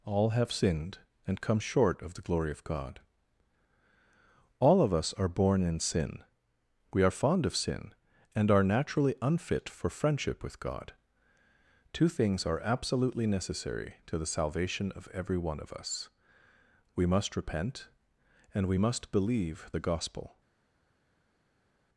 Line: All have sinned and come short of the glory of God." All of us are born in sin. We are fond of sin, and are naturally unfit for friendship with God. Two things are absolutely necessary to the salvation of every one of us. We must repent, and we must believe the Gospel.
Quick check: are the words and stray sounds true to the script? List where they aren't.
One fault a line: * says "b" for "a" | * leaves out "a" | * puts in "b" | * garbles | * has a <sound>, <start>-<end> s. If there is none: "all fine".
all fine